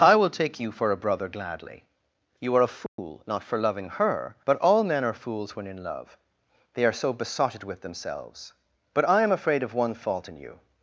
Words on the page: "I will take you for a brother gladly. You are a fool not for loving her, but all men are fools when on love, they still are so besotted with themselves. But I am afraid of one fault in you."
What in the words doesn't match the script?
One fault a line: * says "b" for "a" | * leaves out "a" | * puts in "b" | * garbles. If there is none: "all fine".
* says "in" for "on"
* leaves out "still"